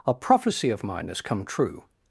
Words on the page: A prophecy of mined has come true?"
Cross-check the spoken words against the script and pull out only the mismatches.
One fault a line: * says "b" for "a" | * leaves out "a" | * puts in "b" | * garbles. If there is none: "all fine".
* says "mine" for "mined"